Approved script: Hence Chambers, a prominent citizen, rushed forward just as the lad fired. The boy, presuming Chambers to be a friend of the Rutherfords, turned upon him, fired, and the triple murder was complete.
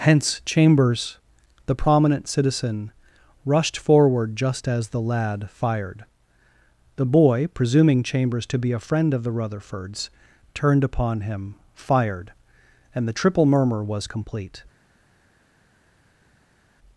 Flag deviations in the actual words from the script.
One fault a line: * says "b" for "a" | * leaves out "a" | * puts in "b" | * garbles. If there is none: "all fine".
* says "the" for "a"
* says "murmur" for "murder"